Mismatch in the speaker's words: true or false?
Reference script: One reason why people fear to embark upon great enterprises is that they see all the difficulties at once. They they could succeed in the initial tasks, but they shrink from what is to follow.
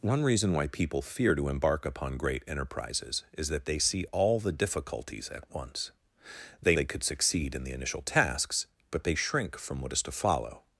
false